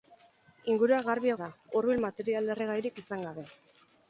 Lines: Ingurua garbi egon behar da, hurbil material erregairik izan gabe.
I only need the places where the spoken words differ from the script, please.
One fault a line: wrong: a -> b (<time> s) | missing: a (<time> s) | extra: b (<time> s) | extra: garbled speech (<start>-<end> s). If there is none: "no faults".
missing: egon behar (1.3 s)